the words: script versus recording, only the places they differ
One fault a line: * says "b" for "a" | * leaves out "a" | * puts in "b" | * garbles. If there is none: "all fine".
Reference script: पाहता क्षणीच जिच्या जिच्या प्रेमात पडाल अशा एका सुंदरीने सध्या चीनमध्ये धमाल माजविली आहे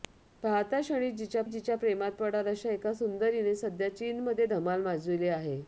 all fine